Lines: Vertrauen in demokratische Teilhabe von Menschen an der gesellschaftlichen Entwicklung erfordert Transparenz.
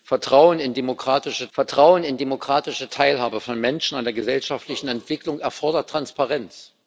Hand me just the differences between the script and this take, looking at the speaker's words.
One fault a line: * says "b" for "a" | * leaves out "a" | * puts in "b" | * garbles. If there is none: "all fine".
* puts in "vertrauen in demokratische"